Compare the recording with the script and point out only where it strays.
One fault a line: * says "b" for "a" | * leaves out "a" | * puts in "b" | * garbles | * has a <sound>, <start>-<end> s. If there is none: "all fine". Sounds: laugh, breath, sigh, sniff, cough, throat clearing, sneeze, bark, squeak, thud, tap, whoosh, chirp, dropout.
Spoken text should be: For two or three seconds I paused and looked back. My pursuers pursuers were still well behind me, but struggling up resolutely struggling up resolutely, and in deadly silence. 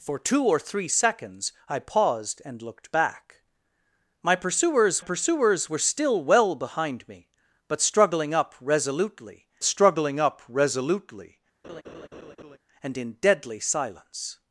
* has a laugh, 11.6-12.6 s